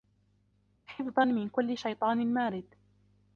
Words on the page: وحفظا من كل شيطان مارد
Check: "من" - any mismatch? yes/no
no